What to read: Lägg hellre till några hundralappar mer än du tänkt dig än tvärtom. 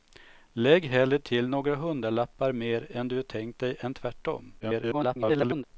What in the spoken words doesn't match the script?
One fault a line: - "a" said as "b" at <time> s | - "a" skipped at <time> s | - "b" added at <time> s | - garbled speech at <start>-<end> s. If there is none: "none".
- garbled speech at 4.6-5.6 s